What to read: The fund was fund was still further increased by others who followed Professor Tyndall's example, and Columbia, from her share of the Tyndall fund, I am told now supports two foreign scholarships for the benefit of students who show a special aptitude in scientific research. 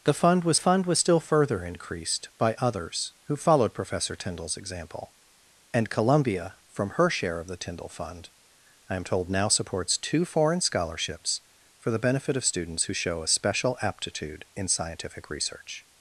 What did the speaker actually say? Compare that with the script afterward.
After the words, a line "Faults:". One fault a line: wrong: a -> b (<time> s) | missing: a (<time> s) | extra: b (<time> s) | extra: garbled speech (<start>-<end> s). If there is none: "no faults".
The fund was fund was still further increased by others who followed Professor Tyndall's example, and Columbia, from her share of the Tyndall fund, I am told now supports two foreign scholarships for the benefit of students who show a special aptitude in scientific research.
Faults:
no faults